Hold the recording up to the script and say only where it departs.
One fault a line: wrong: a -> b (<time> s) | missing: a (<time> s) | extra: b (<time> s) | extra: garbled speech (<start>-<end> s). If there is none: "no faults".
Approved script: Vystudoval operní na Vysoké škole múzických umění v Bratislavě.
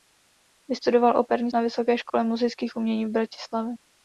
no faults